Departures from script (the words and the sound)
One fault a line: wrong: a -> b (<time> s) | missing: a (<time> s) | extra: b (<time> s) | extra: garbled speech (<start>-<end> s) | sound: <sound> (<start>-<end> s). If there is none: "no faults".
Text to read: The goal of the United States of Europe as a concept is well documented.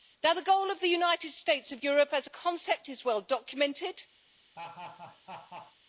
sound: laugh (4.5-5.8 s)